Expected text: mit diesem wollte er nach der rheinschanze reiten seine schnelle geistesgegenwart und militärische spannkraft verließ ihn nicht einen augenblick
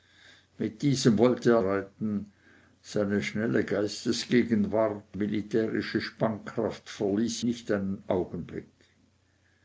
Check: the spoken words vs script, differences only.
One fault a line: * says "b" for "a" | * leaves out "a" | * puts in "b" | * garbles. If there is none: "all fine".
* leaves out "nach der rheinschanze"
* leaves out "und"
* leaves out "ihn"